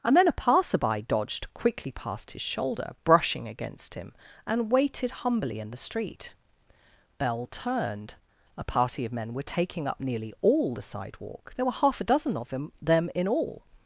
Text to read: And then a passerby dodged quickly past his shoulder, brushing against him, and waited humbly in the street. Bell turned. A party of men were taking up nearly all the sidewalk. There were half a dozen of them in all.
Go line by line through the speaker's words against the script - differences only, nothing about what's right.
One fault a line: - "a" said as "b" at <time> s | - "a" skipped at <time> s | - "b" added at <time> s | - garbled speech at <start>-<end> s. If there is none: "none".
- "them" added at 12.8 s